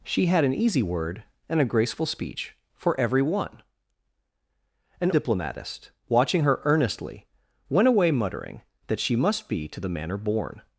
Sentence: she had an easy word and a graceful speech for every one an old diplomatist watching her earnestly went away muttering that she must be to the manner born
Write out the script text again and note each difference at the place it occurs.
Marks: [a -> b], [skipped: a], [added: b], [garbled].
she had an easy word and a graceful speech for every one an [skipped: old] diplomatist watching her earnestly went away muttering that she must be to the manner born